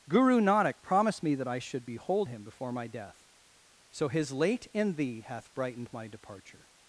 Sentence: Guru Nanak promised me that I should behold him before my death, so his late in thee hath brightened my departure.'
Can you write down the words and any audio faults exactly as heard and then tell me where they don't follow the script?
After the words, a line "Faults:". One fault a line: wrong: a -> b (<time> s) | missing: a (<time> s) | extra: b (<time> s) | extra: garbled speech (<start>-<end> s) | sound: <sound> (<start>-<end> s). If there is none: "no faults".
Guru Nanak promised me that I should behold him before my death, so his late in thee hath brightened my departure.'
Faults:
no faults